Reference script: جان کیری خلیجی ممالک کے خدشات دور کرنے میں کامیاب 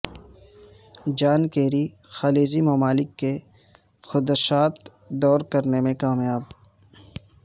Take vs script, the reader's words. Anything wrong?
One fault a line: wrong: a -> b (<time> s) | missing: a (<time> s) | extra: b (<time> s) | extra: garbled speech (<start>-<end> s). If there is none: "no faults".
no faults